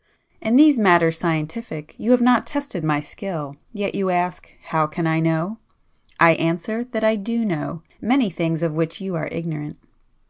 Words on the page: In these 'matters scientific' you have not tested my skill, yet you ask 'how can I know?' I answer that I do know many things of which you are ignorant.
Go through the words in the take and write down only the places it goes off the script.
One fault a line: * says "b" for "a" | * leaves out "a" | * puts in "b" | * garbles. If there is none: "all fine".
all fine